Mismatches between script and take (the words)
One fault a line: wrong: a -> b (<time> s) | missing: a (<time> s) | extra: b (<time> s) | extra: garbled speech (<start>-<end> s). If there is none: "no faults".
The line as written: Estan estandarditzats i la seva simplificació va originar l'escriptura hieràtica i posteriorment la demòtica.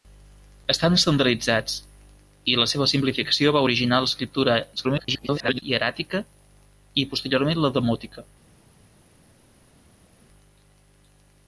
extra: garbled speech (4.8-5.6 s)